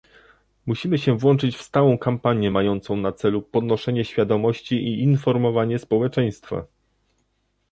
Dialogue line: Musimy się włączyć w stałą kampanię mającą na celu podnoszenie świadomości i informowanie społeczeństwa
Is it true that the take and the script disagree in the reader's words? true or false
false